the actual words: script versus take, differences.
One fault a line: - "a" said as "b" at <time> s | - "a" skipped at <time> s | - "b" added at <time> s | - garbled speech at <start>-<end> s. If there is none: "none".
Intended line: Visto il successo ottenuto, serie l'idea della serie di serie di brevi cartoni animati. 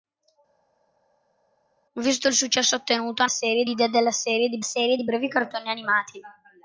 none